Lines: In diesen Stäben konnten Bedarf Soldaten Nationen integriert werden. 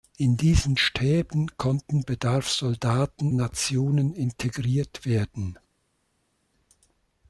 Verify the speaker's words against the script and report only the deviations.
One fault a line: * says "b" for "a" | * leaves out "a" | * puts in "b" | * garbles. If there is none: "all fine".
all fine